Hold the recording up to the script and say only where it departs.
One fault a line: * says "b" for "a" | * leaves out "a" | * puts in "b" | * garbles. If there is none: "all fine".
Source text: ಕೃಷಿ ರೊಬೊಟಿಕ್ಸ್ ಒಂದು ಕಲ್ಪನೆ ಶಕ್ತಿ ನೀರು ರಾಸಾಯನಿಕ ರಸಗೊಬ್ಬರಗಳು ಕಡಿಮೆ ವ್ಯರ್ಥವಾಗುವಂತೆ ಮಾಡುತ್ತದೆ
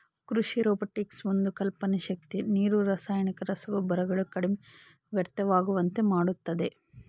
all fine